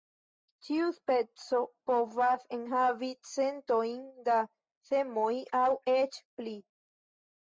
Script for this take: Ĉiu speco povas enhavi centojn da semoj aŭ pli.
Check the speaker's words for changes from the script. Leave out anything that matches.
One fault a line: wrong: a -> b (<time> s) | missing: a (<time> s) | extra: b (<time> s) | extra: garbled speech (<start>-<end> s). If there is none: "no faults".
extra: eĉ (5.9 s)